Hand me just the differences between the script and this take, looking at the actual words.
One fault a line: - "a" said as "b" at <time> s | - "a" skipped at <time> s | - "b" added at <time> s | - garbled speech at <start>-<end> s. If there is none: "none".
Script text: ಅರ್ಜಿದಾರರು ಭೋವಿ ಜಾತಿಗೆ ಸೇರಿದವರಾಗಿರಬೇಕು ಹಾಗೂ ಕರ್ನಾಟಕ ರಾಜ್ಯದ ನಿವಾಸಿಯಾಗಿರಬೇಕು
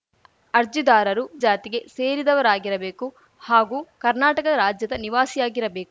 - "ಭೋವಿ" skipped at 1.2 s